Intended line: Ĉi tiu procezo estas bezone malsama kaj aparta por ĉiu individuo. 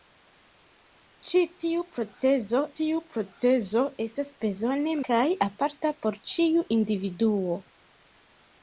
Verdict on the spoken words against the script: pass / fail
fail